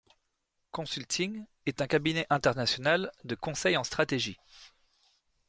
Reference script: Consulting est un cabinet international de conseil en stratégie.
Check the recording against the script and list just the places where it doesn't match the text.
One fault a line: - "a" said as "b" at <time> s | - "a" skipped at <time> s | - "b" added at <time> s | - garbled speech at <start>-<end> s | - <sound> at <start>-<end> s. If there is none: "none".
none